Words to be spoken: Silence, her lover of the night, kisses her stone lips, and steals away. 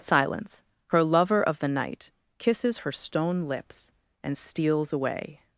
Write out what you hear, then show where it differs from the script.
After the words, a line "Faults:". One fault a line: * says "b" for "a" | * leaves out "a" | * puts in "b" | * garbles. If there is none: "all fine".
Silence, her lover of the night, kisses her stone lips, and steals away.
Faults:
all fine